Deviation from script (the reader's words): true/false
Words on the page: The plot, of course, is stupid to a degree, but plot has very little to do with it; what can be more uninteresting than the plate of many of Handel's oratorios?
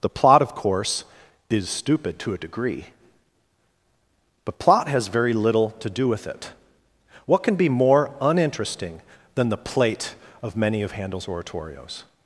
false